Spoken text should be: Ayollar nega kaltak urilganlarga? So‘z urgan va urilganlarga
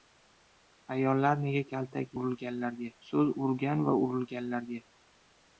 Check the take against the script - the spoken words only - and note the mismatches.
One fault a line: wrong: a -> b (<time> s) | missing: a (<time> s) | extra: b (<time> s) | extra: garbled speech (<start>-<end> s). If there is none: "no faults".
no faults